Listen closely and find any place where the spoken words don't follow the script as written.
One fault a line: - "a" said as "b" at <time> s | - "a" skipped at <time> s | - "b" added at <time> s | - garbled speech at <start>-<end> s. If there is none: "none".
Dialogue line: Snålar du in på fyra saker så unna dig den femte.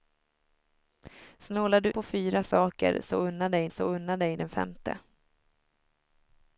- "in" skipped at 1.9 s
- "så unna dig" added at 3.7 s